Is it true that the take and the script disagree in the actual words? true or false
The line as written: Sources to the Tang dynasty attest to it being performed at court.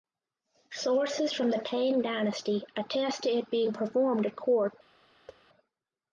true